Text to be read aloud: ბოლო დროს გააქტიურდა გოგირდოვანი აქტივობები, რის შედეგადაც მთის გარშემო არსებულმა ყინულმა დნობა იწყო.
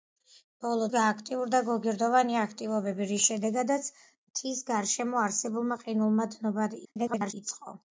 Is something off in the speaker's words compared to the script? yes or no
yes